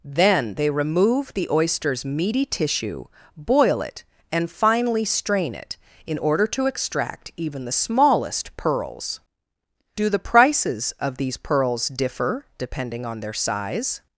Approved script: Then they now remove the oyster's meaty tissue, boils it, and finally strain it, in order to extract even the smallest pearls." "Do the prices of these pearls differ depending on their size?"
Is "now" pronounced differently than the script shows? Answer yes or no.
yes